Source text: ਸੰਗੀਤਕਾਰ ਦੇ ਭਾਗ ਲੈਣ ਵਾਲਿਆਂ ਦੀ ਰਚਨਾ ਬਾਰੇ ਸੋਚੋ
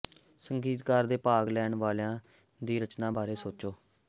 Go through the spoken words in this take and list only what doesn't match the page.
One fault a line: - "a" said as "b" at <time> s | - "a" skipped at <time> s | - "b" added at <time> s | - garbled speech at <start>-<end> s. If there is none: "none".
none